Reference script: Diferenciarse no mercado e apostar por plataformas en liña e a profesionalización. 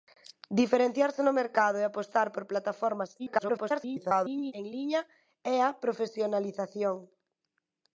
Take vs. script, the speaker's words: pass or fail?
fail